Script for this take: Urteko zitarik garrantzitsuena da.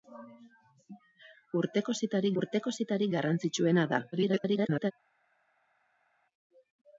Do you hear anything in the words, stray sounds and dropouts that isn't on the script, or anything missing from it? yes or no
yes